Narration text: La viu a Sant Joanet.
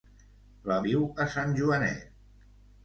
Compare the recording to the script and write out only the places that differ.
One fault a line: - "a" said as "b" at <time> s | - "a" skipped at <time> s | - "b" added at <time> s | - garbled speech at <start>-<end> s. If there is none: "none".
none